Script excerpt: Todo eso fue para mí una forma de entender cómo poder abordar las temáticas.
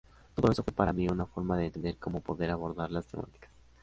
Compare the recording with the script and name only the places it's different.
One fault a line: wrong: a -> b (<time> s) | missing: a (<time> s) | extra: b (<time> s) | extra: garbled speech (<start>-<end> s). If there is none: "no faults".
no faults